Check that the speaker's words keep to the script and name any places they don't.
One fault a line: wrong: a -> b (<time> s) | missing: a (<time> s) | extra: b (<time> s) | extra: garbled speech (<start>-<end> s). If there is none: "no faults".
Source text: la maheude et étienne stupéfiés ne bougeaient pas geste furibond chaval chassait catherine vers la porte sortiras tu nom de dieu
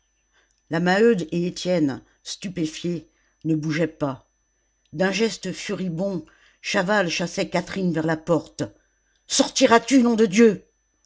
extra: d'un (4.9 s)